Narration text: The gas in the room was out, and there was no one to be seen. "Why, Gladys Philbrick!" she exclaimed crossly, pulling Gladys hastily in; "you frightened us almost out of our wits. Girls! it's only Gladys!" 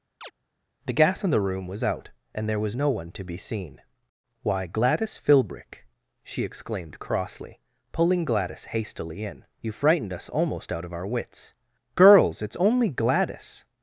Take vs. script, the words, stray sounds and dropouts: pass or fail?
fail